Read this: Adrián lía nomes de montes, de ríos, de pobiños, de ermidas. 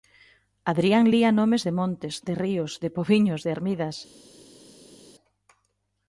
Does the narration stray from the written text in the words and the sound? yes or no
no